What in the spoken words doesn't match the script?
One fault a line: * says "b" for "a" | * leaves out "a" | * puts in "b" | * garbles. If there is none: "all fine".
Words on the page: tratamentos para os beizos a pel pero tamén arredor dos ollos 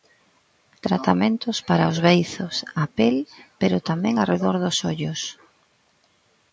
all fine